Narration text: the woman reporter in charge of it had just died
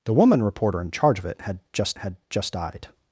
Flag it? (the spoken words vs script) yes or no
yes